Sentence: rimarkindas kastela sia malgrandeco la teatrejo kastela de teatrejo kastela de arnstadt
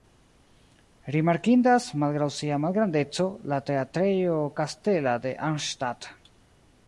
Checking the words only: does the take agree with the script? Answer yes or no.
no